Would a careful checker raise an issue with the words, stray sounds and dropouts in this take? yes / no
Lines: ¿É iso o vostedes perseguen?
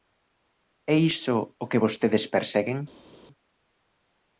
yes